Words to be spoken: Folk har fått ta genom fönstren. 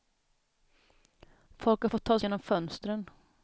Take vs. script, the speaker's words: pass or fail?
pass